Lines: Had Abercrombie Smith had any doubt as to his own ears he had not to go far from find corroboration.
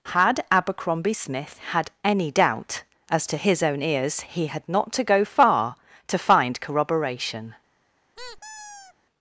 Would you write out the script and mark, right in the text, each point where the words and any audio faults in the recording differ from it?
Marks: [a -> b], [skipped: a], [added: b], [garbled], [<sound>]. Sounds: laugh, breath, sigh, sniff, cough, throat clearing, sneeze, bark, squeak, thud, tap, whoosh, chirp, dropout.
Had Abercrombie Smith had any doubt as to his own ears he had not to go far [from -> to] find corroboration. [squeak]